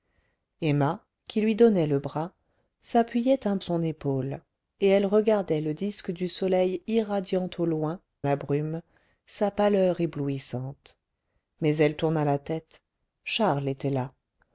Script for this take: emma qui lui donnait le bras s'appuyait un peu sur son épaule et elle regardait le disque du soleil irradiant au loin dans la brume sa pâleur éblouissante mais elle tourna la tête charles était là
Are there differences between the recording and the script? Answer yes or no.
yes